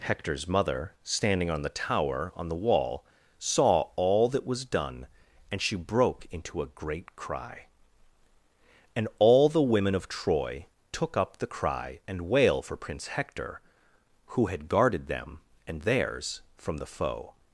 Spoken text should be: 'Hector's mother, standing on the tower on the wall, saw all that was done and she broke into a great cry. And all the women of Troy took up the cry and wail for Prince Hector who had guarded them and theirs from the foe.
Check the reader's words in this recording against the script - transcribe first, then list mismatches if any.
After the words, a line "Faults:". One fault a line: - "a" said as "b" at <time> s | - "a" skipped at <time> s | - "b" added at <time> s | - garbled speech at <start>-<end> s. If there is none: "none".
'Hector's mother, standing on the tower on the wall, saw all that was done and she broke into a great cry. And all the women of Troy took up the cry and wail for Prince Hector who had guarded them and theirs from the foe.
Faults:
none